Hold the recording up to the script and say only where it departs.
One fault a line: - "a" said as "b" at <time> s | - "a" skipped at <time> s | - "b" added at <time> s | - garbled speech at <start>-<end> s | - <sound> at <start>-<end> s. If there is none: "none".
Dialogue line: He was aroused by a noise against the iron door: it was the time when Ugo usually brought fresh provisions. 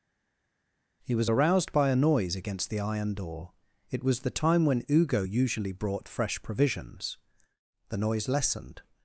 - "The noise lessened" added at 7.9 s